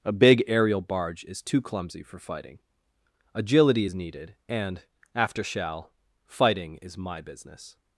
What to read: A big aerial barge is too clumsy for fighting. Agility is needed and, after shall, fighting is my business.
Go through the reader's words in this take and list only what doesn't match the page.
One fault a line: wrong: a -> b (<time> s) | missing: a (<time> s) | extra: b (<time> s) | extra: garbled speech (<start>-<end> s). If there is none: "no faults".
no faults